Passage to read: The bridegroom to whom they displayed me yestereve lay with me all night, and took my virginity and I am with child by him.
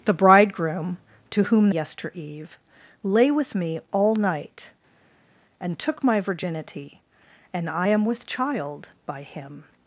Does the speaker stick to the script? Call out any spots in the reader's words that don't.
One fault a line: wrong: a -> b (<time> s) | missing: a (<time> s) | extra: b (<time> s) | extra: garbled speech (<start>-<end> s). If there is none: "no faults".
missing: they displayed me (1.7 s)